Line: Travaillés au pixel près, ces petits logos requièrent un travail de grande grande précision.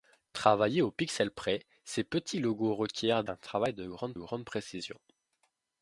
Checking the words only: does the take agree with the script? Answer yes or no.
yes